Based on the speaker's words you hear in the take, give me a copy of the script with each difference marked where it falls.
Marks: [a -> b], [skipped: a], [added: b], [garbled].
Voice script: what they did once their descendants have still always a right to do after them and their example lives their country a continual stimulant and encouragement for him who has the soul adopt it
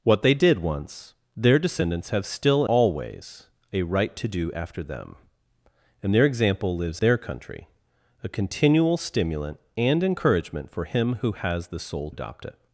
what they did once their descendants have still always a right to do after them and their example lives their country a continual stimulant and encouragement for him who has the soul adopt it